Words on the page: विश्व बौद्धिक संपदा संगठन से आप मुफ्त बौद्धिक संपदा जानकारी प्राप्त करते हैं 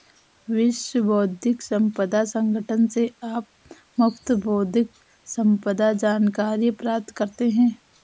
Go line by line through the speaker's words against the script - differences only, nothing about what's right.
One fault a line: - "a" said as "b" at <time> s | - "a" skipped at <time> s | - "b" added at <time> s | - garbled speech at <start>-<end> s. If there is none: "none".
none